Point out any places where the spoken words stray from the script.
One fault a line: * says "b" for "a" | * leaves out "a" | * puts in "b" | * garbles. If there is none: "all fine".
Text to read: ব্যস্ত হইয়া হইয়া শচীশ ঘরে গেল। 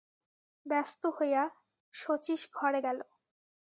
* leaves out "হইয়া"